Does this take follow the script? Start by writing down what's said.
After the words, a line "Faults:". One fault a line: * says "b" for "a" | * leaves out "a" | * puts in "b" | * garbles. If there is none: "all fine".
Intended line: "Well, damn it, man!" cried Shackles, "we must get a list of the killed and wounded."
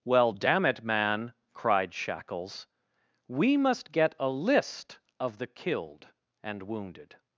"Well, damn it, man!" cried Shackles, "we must get a list of the killed and wounded."
Faults:
all fine